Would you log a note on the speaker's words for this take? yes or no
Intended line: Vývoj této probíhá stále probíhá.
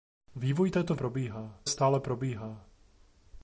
no